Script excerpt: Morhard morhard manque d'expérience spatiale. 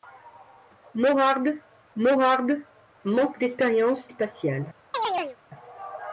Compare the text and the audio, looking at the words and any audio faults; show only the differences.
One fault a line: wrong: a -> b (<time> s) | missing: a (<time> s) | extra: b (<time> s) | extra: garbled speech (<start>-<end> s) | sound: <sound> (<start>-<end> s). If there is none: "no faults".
sound: chirp (4.9-5.4 s)